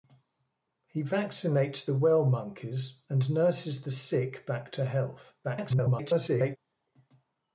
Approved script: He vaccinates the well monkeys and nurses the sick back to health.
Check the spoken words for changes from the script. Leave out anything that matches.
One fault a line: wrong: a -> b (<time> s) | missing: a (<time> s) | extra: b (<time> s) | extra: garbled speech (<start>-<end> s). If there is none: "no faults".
extra: garbled speech (5.4-6.6 s)